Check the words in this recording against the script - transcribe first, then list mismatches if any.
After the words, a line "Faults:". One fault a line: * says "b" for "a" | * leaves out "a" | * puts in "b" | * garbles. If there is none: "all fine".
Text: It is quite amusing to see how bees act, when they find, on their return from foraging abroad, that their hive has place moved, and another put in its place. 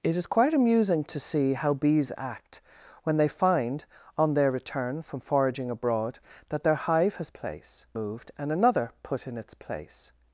It is quite amusing to see how bees act, when they find, on their return from foraging abroad, that their hive has place moved, and another put in its place.
Faults:
all fine